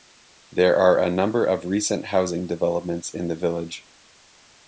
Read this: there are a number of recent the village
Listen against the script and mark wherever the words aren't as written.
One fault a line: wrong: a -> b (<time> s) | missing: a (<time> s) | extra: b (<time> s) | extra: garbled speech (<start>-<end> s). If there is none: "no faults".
extra: housing developments in (2.1 s)